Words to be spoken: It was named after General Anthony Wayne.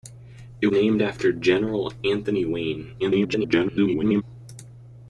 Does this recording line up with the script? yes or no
no